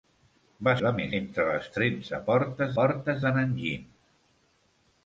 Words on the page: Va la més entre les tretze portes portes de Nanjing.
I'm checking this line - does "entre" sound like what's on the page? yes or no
yes